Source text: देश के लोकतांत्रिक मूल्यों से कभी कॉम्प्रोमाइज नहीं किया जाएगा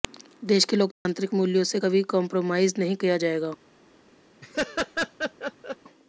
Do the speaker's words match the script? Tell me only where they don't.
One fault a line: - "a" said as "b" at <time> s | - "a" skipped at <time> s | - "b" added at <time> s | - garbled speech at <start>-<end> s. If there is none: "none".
none